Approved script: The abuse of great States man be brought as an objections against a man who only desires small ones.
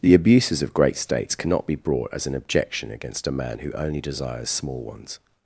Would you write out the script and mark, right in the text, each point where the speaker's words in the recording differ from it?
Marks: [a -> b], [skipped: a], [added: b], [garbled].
The [abuse -> abuses] of great States [man -> cannot] be brought as an [objections -> objection] against a man who only desires small ones.